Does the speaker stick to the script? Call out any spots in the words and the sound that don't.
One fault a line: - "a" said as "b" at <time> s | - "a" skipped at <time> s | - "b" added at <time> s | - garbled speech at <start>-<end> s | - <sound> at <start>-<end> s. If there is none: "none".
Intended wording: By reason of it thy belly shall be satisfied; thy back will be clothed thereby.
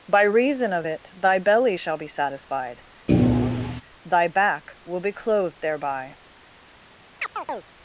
- thud at 3.1-3.8 s
- chirp at 7.2-7.7 s